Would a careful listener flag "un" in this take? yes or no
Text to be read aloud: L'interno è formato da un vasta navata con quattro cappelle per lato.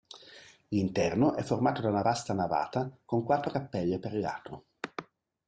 yes